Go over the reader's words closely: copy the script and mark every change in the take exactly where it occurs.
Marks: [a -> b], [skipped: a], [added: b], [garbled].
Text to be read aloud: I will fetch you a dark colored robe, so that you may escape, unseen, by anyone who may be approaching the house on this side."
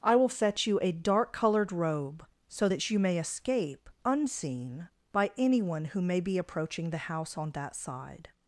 I will fetch you a dark colored robe, so that you may escape, unseen, by anyone who may be approaching the house on [this -> that] side."